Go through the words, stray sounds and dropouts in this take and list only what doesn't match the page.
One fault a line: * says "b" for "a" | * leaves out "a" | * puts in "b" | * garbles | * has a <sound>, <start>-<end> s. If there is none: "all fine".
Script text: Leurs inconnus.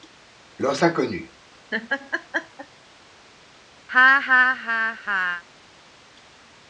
* has a laugh, 1.7-2.7 s
* has a laugh, 3.9-5.4 s